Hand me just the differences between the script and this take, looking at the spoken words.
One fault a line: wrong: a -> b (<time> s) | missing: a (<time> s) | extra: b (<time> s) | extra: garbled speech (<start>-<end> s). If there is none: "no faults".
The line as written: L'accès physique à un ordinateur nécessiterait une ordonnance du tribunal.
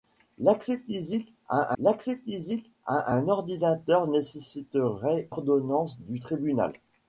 extra: l'accès physique à (1.8 s)
missing: une (5.3 s)